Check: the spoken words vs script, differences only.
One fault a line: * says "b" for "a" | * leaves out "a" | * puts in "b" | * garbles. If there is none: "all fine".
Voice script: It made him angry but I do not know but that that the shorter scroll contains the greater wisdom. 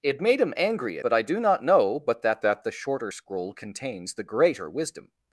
all fine